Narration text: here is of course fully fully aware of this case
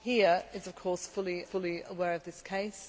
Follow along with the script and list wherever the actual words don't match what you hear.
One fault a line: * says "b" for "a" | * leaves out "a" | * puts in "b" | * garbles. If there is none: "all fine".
all fine